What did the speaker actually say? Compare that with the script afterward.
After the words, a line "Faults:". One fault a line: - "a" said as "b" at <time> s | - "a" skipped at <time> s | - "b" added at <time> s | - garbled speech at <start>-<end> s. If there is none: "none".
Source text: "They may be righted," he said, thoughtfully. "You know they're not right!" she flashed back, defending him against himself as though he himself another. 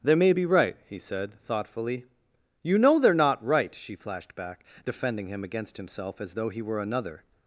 "They may be right," he said, thoughtfully. "You know they're not right!" she flashed back, defending him against himself as though he were another.
Faults:
- "righted" said as "right" at 0.4 s
- "himself" said as "were" at 6.6 s